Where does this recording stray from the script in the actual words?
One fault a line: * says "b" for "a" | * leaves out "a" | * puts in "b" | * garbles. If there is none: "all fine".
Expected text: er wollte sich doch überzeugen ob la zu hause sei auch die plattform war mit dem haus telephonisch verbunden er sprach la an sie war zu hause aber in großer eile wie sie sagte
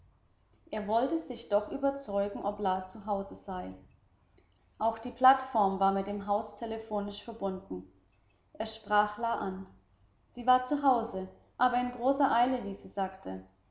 all fine